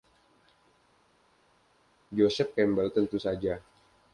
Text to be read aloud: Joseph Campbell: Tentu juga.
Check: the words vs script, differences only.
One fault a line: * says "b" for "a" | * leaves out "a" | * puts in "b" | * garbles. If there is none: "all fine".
* says "saja" for "juga"